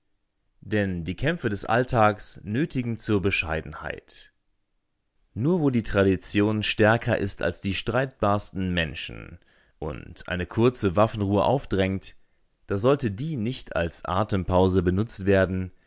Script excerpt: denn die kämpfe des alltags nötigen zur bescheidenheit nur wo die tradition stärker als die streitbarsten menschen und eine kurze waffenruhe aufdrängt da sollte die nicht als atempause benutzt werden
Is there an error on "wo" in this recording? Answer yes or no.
no